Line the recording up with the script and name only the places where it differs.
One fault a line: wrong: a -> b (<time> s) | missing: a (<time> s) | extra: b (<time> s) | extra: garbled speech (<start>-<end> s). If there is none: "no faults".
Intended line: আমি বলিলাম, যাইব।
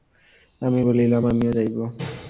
extra: আমিও (1.2 s)